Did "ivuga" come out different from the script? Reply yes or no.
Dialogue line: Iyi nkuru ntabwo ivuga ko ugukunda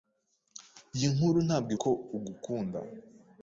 yes